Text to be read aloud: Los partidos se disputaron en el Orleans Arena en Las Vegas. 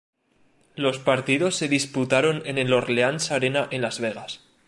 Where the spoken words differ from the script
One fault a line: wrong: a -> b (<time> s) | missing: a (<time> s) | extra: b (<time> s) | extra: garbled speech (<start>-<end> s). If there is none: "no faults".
no faults